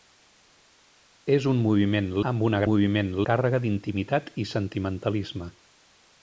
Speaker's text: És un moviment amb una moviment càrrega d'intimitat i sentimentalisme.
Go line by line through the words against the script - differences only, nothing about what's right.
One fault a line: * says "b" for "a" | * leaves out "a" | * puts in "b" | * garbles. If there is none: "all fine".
all fine